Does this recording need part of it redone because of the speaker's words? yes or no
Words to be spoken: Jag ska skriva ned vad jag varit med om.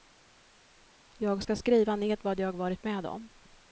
no